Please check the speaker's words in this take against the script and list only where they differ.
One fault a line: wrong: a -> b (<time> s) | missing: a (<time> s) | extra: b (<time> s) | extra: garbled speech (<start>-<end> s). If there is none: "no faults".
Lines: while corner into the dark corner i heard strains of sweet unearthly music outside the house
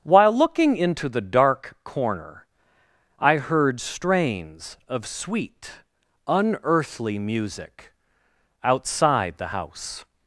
wrong: corner -> looking (0.3 s)